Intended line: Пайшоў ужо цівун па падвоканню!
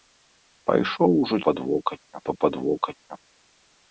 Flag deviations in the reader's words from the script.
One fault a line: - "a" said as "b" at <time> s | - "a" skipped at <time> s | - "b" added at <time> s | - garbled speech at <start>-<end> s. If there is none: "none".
- "цівун" said as "падвоканню" at 1.5 s